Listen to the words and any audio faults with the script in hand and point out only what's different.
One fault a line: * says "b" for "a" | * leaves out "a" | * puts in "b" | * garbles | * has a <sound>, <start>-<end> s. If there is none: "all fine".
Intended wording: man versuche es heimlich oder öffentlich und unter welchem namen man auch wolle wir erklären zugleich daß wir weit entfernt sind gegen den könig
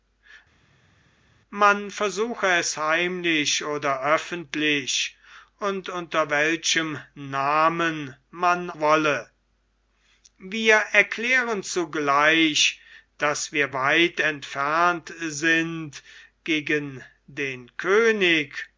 * leaves out "auch"